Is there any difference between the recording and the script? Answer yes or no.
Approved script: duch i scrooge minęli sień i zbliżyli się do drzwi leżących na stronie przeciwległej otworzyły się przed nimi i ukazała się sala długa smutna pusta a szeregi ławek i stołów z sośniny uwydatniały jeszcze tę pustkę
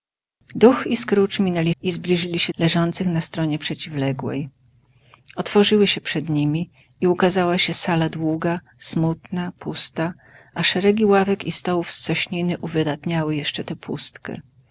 yes